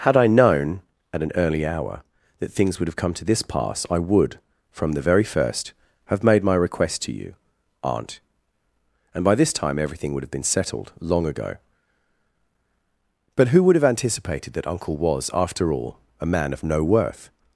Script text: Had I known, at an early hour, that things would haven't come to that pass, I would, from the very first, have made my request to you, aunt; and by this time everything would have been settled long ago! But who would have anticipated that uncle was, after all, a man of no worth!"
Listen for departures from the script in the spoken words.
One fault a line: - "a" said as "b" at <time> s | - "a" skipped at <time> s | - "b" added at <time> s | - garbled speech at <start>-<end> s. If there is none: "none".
- "haven't" said as "have" at 2.9 s
- "that" said as "this" at 3.2 s